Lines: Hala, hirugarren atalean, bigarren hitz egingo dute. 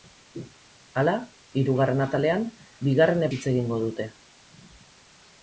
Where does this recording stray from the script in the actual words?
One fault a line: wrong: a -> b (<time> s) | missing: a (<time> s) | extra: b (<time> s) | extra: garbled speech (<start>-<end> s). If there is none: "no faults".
no faults